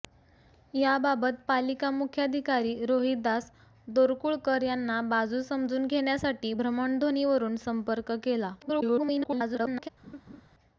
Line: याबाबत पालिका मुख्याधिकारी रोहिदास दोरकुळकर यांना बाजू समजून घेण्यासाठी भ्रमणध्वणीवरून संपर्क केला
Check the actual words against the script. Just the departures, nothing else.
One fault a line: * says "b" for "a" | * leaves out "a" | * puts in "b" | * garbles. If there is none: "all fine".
* garbles